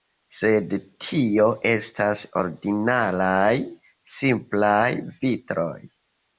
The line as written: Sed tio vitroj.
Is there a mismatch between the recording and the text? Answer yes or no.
yes